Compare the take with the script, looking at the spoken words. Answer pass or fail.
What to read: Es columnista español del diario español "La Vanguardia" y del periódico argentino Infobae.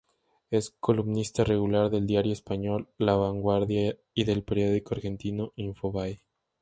fail